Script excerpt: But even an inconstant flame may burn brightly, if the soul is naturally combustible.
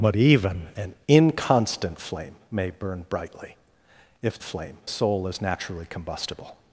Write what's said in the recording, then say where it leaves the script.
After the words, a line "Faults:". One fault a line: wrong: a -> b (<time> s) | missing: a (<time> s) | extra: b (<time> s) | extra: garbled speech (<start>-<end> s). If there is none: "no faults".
But even an inconstant flame may burn brightly, if flame soul is naturally combustible.
Faults:
wrong: the -> flame (4.4 s)